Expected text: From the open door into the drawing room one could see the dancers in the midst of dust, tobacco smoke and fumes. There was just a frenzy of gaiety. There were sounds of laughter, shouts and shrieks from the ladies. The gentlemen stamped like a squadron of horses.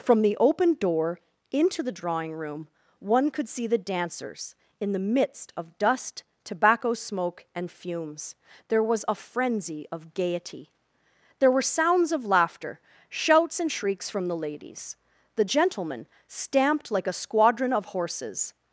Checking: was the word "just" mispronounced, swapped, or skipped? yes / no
yes